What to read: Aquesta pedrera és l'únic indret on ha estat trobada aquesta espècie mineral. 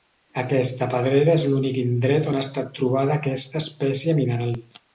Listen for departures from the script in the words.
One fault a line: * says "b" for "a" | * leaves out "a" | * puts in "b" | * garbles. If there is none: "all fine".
all fine